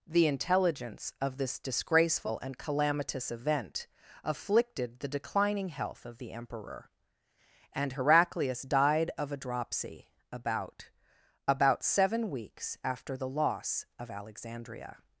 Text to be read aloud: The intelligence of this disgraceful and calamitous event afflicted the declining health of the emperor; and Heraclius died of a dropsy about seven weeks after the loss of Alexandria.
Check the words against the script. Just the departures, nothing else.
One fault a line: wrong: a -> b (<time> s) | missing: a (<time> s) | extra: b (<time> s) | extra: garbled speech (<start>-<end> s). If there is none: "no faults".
extra: about (11.5 s)